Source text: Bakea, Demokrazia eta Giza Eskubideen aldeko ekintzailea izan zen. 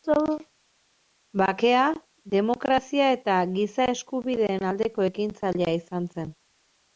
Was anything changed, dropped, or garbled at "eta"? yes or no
no